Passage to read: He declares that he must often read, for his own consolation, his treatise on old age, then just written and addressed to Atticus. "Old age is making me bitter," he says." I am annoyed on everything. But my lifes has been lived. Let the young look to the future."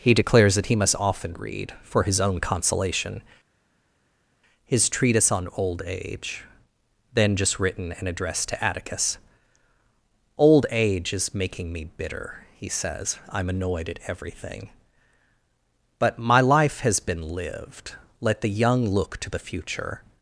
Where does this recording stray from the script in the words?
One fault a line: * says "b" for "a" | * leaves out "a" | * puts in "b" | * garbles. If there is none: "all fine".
* says "at" for "on"
* says "life" for "lifes"